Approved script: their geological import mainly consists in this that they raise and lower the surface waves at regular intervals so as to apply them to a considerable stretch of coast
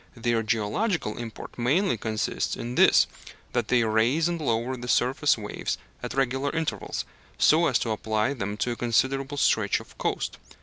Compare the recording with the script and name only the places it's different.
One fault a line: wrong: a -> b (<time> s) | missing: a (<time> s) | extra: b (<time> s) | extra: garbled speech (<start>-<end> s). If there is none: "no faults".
no faults